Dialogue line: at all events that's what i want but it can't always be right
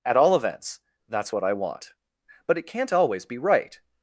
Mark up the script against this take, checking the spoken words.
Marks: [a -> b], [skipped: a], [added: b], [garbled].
at all events that's what i want but it can't always be right